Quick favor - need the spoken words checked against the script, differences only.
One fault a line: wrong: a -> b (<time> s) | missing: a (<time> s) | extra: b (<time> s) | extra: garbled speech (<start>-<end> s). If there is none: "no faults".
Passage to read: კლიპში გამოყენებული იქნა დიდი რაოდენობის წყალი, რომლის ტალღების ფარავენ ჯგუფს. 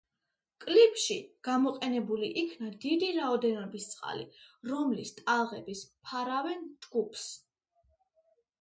no faults